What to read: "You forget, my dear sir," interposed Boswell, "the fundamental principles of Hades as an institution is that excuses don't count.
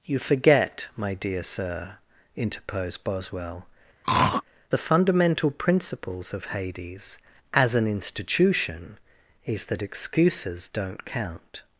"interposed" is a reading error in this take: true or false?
false